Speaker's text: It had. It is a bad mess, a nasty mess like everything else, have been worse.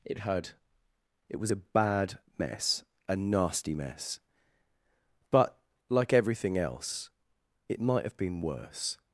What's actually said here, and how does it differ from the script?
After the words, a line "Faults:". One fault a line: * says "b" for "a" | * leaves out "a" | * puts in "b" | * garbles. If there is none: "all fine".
It had. It was a bad mess, a nasty mess but, like everything else, it might have been worse.
Faults:
* says "was" for "is"
* puts in "but"
* puts in "it might"